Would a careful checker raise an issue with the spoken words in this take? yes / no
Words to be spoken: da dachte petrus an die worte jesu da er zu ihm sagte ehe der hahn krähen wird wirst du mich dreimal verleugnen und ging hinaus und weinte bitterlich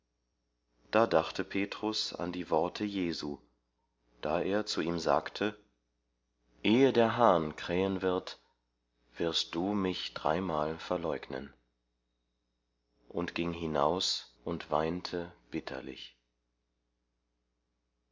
no